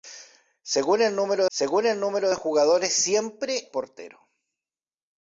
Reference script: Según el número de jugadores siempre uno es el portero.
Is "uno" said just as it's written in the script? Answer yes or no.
no